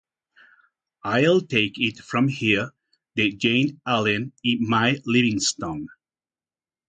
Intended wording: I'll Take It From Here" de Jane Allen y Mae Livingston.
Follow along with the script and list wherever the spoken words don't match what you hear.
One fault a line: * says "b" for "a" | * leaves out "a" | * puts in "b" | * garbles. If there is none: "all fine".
all fine